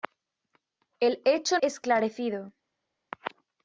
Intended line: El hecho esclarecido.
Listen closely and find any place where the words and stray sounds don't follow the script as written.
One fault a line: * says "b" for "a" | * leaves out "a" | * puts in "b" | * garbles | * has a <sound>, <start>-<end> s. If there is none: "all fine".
all fine